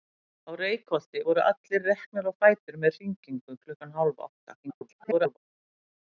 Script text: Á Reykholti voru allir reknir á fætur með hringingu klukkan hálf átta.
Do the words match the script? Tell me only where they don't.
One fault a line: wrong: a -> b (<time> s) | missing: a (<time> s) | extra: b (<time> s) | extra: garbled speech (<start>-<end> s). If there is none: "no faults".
extra: garbled speech (4.6-5.4 s)